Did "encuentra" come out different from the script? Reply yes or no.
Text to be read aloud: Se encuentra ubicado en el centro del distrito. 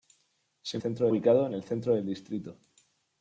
yes